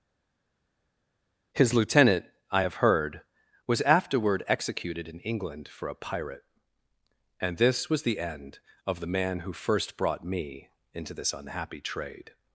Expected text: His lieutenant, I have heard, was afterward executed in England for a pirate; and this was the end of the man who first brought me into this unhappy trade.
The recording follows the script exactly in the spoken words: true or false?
true